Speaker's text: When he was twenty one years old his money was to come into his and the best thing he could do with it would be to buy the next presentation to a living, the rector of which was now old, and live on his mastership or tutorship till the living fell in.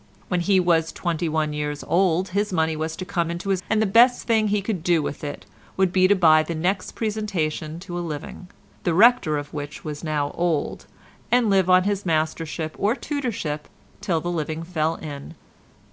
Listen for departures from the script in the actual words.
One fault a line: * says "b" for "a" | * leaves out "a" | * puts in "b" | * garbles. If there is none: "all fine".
all fine